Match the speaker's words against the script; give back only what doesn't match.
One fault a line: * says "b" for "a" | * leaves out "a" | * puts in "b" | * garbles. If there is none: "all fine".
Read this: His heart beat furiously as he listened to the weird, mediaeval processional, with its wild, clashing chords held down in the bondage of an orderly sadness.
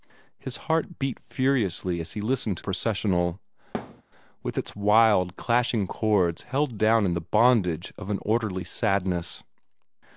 * leaves out "the weird mediaeval"